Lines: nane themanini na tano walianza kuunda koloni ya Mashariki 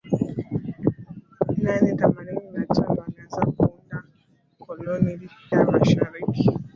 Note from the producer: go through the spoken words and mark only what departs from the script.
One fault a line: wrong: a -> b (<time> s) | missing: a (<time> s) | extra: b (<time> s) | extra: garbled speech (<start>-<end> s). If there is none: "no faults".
no faults